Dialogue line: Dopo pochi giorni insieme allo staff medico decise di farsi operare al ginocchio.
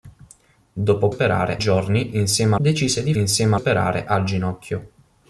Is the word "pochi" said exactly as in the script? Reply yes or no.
no